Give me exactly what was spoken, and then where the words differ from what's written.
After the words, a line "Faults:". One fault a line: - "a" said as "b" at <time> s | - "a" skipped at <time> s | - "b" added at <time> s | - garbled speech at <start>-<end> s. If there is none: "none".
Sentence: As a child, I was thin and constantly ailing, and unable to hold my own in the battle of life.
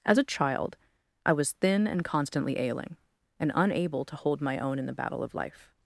As a child, I was thin and constantly ailing, and unable to hold my own in the battle of life.
Faults:
none